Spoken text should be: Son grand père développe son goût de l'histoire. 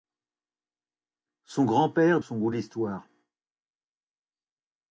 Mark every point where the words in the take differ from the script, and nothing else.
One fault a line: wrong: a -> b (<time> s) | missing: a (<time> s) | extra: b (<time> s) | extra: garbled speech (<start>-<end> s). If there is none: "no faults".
missing: développe (2.2 s)